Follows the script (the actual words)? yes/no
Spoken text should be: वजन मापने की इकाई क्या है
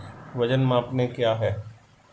no